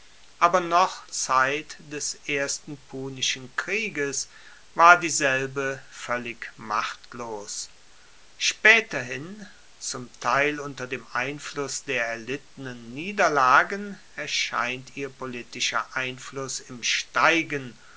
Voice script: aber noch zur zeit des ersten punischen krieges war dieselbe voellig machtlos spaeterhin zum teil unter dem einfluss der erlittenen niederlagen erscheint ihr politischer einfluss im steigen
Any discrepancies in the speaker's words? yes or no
yes